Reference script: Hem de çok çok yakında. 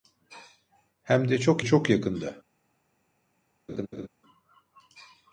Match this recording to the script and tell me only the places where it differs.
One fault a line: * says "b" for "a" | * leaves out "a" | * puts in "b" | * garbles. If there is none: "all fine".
all fine